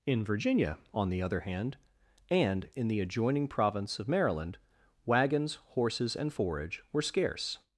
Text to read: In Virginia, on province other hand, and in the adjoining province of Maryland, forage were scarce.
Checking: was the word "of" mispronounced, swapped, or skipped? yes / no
no